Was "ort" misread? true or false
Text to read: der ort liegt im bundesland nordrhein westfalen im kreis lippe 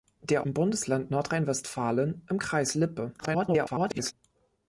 true